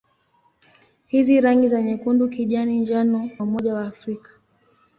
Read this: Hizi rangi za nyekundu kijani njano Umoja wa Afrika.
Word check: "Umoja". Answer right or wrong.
right